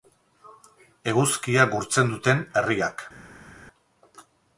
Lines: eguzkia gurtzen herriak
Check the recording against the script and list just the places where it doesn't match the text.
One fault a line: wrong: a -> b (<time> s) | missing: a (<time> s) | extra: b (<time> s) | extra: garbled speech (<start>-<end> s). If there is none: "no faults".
extra: duten (2.1 s)